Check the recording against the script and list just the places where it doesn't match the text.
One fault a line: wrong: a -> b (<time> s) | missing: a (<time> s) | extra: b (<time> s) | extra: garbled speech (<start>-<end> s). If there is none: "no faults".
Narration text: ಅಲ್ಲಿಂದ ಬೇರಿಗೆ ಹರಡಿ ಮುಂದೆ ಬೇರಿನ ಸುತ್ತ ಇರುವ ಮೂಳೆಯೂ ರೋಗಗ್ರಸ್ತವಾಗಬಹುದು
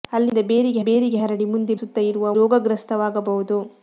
extra: ಬೇರಿಗೆ (0.8 s)
missing: ಬೇರಿನ (1.7 s)
missing: ಮೂಳೆಯೂ (2.3 s)